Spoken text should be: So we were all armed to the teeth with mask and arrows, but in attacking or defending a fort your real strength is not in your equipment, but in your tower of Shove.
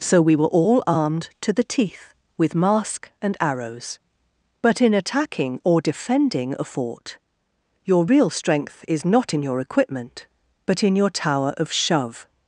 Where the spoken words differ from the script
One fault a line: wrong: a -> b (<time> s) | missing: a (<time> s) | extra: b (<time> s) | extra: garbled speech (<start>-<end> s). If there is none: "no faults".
no faults